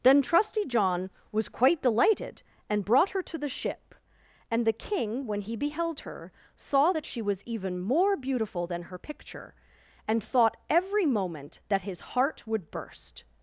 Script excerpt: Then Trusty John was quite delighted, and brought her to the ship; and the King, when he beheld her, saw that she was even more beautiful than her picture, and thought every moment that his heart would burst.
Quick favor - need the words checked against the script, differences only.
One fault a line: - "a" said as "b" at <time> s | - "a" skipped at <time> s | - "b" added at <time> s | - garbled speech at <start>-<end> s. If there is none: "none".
none